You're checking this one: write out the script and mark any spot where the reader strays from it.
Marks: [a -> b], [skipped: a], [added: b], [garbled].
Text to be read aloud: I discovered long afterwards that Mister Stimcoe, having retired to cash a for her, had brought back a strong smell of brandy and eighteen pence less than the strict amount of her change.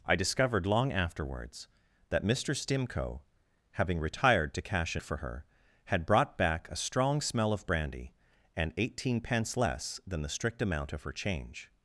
I discovered long afterwards that Mister Stimcoe, having retired to cash a for her, had brought back a strong smell of brandy and eighteen pence less than the strict amount of her change.